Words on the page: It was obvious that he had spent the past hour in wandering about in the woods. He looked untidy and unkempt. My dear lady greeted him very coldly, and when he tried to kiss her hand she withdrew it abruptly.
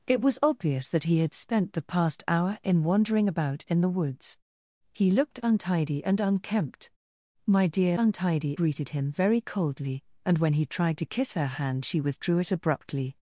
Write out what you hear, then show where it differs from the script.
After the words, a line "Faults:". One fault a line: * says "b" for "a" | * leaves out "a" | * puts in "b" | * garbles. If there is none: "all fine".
It was obvious that he had spent the past hour in wandering about in the woods. He looked untidy and unkempt. My dear untidy greeted him very coldly, and when he tried to kiss her hand she withdrew it abruptly.
Faults:
* says "untidy" for "lady"